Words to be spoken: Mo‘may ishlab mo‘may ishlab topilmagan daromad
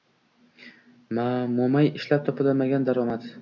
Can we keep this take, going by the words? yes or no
no